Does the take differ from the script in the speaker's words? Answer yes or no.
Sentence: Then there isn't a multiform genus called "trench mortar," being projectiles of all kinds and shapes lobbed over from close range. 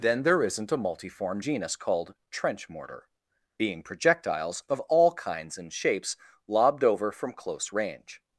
no